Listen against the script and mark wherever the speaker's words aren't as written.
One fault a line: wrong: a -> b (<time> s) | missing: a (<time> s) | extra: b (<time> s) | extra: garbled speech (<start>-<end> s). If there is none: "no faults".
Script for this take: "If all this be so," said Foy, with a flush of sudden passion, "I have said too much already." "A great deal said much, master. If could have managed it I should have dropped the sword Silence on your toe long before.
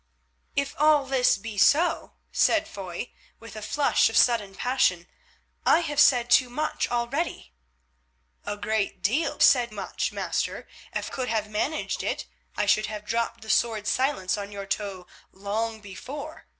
no faults